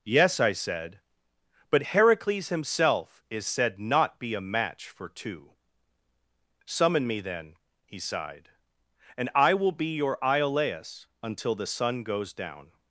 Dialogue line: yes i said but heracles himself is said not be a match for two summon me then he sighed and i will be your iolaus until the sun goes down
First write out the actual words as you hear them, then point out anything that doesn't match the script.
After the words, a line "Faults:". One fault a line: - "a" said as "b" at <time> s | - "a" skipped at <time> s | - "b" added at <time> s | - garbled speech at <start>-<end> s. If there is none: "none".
yes i said but heracles himself is said not be a match for two summon me then he sighed and i will be your iolaus until the sun goes down
Faults:
none